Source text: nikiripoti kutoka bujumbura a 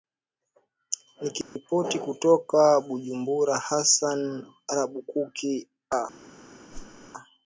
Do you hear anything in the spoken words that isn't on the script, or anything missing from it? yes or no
yes